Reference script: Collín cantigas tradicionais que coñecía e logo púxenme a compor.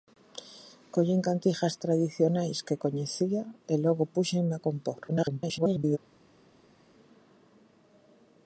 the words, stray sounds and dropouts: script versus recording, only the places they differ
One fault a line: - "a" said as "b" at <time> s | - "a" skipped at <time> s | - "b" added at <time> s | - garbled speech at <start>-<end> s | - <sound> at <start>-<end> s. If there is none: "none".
- garbled speech at 5.1-6.0 s